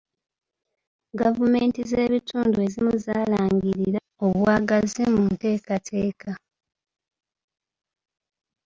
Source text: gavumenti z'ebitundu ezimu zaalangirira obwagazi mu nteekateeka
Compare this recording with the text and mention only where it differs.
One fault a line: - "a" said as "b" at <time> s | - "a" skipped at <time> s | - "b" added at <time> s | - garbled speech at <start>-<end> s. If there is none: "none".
none